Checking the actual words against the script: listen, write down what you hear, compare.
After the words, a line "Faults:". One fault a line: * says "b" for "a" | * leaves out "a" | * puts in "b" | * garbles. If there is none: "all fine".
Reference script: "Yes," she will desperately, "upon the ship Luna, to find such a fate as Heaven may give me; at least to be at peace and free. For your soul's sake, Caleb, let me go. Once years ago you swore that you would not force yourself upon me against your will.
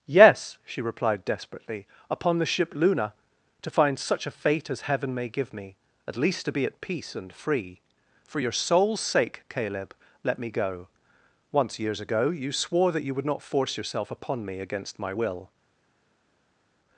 "Yes," she replied desperately, "upon the ship Luna, to find such a fate as Heaven may give me; at least to be at peace and free. For your soul's sake, Caleb, let me go. Once years ago you swore that you would not force yourself upon me against my will.
Faults:
* says "replied" for "will"
* says "my" for "your"